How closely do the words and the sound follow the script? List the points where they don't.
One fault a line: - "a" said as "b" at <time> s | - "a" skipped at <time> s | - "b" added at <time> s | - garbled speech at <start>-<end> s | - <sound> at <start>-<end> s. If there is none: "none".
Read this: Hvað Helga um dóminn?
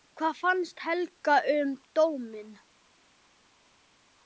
- "fannst" added at 0.4 s